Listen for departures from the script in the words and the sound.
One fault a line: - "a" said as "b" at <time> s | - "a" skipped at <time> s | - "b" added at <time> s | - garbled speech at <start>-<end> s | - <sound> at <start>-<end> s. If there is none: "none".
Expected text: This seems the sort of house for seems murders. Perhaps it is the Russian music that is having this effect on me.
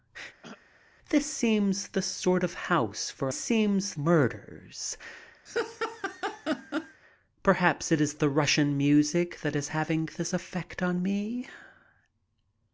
- throat clearing at 0.4-0.7 s
- laugh at 5.5-7.0 s